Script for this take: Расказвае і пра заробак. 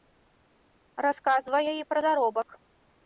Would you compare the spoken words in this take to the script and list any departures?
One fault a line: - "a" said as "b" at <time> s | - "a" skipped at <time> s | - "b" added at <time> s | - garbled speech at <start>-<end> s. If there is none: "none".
none